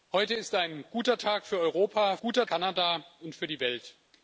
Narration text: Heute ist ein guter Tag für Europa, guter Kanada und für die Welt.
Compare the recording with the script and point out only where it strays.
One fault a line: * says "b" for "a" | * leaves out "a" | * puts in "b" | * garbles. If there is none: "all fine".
all fine